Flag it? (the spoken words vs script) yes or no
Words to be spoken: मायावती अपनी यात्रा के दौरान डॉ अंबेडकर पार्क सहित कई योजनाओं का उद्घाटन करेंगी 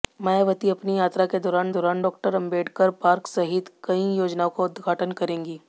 yes